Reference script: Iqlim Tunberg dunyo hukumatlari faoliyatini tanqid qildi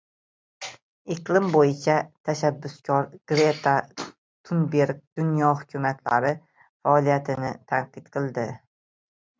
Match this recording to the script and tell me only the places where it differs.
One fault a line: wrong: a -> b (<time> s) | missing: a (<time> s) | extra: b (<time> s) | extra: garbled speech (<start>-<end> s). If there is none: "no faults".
extra: bo‘yicha tashabbuskor Greta (1.6 s)